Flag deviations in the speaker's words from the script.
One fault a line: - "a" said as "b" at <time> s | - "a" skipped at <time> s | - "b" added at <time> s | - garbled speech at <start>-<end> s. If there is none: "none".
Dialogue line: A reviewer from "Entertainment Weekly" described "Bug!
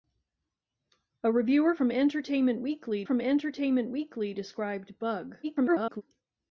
- "from Entertainment Weekly" added at 3.0 s
- garbled speech at 5.4-6.0 s